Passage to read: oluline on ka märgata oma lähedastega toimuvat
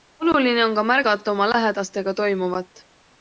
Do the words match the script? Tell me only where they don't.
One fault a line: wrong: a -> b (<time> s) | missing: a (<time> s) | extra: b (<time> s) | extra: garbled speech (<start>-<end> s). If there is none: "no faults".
no faults